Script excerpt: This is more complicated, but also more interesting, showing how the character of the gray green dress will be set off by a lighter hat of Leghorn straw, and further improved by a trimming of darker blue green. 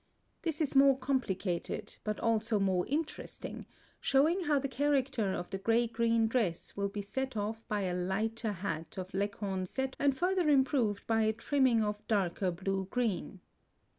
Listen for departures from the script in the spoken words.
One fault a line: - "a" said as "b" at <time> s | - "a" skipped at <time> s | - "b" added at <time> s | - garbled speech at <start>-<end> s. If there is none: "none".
- "straw" said as "set" at 9.6 s